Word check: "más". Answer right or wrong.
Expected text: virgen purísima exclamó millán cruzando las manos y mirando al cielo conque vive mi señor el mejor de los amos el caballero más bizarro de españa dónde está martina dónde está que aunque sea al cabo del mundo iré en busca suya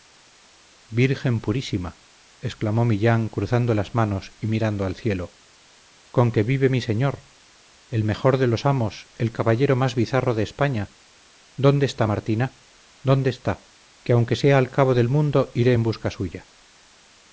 right